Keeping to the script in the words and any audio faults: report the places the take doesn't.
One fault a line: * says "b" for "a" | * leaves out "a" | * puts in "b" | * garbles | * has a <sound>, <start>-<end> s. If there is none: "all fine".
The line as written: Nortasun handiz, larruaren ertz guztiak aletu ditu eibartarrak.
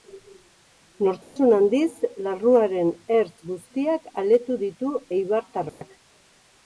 * has a dropout, 1.2-1.4 s
* has a dropout, 5.7-5.8 s